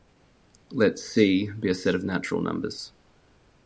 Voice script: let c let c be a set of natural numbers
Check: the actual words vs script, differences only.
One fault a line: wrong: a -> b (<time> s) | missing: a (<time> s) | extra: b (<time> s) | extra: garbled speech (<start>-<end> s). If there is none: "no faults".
missing: let c (1.5 s)